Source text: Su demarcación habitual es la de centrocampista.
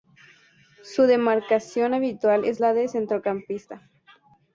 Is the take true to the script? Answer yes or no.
yes